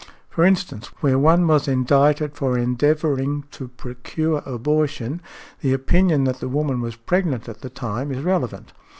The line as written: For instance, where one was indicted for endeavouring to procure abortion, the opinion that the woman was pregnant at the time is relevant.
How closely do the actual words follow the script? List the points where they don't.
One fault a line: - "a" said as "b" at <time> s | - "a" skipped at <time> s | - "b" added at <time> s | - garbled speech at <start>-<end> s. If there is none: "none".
none